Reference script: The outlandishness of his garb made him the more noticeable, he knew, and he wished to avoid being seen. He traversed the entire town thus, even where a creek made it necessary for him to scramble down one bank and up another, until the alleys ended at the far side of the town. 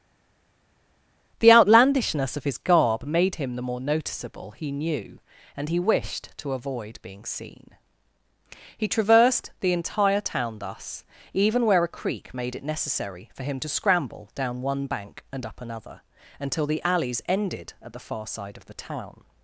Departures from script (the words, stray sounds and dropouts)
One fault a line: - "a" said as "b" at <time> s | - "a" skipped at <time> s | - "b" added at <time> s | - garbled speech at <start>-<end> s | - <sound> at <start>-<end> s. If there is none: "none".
none